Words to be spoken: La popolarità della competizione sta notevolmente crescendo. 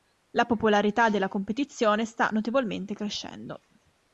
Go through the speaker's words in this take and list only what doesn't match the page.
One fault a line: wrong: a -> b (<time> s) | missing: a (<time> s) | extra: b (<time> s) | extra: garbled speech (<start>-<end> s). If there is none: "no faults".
no faults